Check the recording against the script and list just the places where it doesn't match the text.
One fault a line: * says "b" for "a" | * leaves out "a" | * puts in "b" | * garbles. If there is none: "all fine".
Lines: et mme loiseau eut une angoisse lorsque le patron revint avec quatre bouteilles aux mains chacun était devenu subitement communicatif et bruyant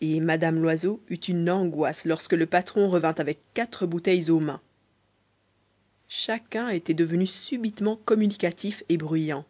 all fine